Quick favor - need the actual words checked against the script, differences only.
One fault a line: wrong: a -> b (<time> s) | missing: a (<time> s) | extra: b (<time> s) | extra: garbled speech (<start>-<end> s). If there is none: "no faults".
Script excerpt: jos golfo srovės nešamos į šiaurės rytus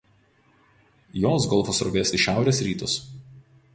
missing: nešamos (2.1 s)